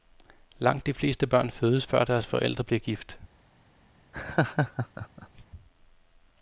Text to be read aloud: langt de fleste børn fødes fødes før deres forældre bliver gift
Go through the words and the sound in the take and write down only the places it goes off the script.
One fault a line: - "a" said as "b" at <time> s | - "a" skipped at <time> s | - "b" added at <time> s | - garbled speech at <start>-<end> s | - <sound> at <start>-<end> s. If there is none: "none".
- "fødes" skipped at 1.9 s
- laugh at 4.1-5.4 s